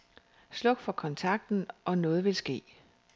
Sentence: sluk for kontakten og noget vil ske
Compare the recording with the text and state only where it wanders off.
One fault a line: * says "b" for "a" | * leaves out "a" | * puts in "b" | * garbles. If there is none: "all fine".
all fine